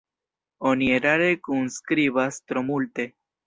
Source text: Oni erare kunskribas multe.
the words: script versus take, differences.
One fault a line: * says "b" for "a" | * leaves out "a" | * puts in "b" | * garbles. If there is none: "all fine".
* puts in "tro"